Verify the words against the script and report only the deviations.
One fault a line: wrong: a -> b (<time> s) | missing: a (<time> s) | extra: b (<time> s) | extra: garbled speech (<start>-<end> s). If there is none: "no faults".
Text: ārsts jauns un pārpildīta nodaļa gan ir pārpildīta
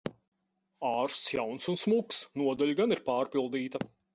wrong: pārpildīta -> smuks (1.8 s)